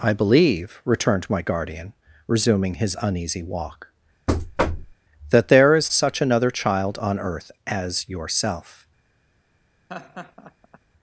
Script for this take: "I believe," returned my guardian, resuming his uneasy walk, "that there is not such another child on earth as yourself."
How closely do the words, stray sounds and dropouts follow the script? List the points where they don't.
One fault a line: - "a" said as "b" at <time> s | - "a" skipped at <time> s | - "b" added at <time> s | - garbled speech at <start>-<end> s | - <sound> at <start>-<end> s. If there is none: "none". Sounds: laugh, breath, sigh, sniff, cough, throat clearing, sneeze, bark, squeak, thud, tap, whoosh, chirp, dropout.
- thud at 4.3-5.0 s
- "not" skipped at 5.9 s
- laugh at 9.9-10.8 s